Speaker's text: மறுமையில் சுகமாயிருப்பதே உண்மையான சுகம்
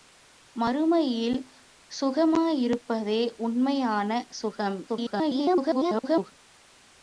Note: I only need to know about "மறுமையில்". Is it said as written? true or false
true